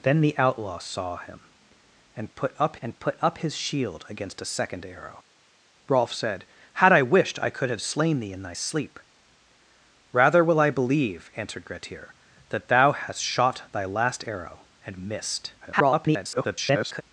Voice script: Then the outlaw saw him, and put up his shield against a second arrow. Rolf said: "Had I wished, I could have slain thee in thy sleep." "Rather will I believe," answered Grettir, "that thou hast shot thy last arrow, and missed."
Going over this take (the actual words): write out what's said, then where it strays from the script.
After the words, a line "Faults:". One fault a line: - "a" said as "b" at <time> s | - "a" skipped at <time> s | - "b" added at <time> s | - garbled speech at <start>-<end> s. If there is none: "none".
Then the outlaw saw him, and put up and put up his shield against a second arrow. Rolf said: "Had I wished, I could have slain thee in thy sleep." "Rather will I believe," answered Grettir, "that thou hast shot thy last arrow, and missed." [garbled]
Faults:
- "and put up" added at 2.8 s
- garbled speech at 15.6-17.0 s